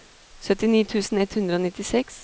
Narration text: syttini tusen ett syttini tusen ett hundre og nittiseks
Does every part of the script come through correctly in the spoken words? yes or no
no